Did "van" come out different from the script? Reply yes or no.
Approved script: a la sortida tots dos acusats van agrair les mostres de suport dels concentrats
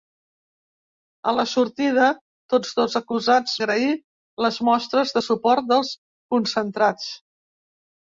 yes